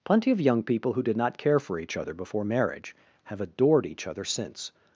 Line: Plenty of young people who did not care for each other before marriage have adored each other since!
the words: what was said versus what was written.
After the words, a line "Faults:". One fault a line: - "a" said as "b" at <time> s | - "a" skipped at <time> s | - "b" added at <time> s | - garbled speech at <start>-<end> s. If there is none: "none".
Plenty of young people who did not care for each other before marriage have adored each other since!
Faults:
none